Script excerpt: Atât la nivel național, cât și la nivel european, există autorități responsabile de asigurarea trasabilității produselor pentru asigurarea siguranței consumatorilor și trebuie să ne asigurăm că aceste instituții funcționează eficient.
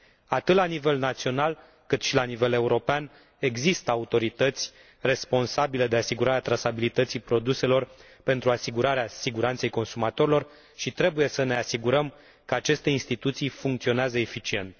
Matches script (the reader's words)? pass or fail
pass